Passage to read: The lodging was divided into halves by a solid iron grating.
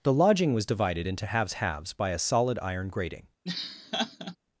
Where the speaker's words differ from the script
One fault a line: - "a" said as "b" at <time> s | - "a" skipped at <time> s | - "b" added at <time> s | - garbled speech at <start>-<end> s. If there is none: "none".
- "halves" added at 1.5 s